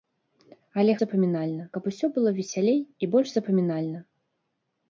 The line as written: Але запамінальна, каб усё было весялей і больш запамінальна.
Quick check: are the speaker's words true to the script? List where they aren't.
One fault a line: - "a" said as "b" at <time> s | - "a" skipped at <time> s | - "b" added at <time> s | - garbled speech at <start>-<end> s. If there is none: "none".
none